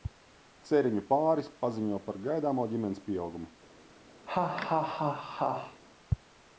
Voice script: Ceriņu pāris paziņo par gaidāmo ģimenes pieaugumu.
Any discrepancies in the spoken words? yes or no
no